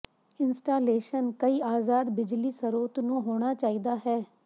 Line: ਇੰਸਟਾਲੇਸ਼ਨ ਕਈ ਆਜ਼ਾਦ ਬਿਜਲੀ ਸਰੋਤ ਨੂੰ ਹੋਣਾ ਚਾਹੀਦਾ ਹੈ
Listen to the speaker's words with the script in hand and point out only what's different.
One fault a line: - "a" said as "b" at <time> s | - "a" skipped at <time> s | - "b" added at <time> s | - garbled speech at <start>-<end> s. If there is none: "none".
none